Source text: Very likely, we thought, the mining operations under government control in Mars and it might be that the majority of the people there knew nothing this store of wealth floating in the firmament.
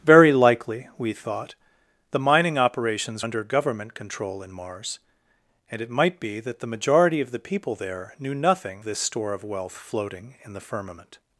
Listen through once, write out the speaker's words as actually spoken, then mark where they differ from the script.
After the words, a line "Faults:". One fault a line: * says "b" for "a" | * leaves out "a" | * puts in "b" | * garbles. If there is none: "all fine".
Very likely, we thought, the mining operations under government control in Mars and it might be that the majority of the people there knew nothing this store of wealth floating in the firmament.
Faults:
all fine